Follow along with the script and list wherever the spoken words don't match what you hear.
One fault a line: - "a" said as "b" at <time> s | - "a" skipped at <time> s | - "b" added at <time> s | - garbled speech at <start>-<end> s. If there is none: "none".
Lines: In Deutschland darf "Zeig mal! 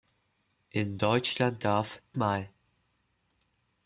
- "Zeig" skipped at 2.0 s